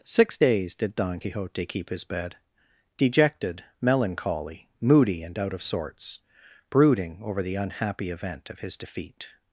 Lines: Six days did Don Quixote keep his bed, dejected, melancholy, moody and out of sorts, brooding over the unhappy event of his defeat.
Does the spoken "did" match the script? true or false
true